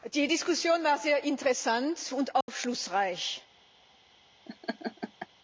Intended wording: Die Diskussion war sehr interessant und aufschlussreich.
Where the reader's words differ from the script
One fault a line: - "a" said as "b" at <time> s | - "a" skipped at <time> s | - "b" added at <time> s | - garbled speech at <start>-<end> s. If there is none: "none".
none